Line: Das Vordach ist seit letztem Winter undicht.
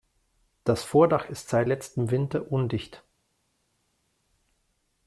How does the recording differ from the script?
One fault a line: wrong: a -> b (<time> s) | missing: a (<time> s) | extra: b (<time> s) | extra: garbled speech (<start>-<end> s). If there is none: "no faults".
no faults